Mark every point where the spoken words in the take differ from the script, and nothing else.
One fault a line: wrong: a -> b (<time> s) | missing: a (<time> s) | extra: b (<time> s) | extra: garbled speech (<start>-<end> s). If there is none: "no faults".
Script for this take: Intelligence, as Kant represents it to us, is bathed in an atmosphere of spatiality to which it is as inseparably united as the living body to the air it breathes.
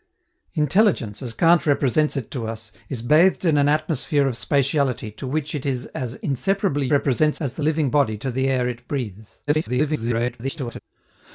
wrong: united -> represents (6.9 s)
extra: garbled speech (9.5-10.8 s)